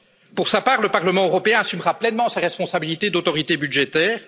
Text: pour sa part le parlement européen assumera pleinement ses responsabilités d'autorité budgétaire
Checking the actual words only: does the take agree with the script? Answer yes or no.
yes